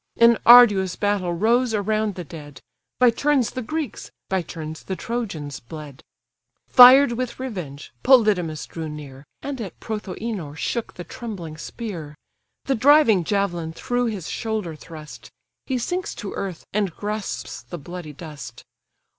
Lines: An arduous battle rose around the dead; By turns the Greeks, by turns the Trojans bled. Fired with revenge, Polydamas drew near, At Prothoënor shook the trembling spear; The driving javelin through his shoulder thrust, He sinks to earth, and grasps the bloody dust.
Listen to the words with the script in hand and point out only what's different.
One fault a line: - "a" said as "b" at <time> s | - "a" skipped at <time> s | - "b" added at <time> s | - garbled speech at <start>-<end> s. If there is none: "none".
- "And" added at 9.4 s